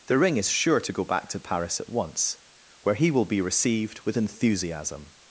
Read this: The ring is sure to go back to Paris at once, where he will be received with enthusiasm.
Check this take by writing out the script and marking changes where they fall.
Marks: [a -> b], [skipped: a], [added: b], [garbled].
The ring is sure to go back to Paris at once, where he will be received with enthusiasm.